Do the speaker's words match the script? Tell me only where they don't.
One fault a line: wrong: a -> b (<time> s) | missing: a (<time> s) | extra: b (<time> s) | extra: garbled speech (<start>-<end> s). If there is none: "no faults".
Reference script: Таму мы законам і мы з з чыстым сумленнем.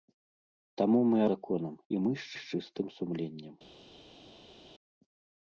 no faults